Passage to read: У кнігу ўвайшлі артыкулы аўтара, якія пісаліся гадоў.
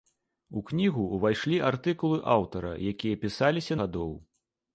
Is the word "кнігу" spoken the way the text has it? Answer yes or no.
yes